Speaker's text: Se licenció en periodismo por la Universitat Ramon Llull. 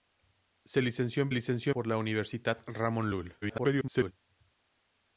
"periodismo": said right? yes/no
no